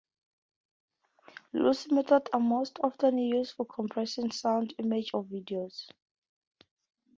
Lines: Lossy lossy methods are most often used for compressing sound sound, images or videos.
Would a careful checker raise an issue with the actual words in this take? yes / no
yes